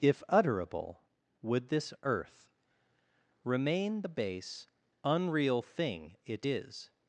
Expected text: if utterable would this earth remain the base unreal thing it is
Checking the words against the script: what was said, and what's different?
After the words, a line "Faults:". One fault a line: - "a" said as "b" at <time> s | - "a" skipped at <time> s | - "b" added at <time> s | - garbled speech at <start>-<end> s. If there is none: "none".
if utterable would this earth remain the base unreal thing it is
Faults:
none